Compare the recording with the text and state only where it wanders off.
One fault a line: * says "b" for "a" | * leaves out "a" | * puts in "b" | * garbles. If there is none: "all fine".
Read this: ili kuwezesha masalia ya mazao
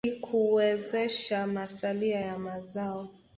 all fine